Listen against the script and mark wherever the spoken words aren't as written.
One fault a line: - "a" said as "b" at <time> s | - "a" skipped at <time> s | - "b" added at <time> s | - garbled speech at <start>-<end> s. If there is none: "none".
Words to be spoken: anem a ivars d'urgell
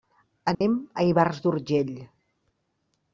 none